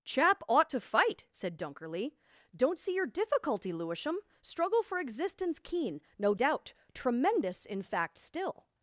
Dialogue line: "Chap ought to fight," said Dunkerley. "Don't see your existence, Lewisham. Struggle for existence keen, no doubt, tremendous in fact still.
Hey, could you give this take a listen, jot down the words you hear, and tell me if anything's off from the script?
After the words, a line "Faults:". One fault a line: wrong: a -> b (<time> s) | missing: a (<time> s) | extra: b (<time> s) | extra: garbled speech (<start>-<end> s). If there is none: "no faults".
"Chap ought to fight," said Dunkerley. "Don't see your difficulty, Lewisham. Struggle for existence keen, no doubt, tremendous in fact still.
Faults:
wrong: existence -> difficulty (3.1 s)